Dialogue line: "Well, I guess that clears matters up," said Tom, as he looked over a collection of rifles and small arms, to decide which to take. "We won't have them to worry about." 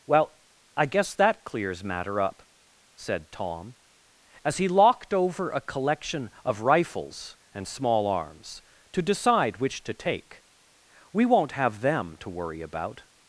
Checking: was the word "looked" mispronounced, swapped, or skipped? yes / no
yes